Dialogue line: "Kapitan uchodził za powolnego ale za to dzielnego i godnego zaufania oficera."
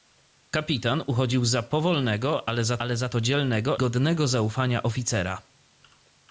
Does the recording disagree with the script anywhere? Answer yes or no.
yes